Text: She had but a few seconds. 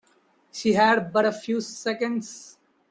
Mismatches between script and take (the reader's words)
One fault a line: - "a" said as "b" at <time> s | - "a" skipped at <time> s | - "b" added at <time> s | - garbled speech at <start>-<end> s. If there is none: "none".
none